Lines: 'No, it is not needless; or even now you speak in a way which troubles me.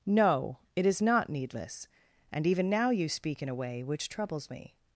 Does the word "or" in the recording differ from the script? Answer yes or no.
yes